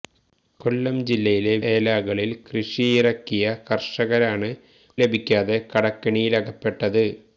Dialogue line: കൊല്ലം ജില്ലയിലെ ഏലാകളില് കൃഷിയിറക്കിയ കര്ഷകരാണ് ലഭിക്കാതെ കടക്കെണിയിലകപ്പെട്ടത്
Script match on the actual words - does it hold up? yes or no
yes